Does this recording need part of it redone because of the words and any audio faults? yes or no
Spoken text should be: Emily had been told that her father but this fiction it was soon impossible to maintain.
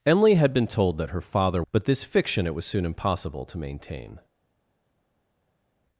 no